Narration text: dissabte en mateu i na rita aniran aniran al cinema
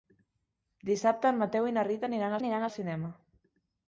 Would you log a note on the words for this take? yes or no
no